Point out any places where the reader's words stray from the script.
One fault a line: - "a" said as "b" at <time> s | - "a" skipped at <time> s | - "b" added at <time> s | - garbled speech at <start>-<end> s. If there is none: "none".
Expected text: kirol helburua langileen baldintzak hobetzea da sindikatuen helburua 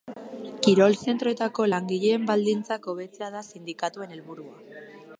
- "helburua" said as "zentroetako" at 1.1 s